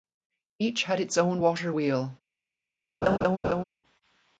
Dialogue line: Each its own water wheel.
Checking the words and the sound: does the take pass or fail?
fail